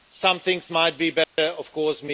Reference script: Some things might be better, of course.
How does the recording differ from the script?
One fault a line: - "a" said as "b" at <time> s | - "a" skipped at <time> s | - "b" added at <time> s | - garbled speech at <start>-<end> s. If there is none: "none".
none